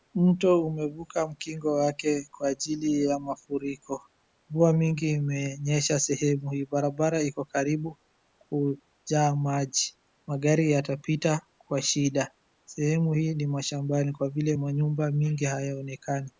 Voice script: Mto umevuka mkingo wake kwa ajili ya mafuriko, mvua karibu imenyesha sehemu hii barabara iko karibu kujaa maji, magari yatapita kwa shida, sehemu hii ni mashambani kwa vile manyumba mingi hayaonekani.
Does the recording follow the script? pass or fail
fail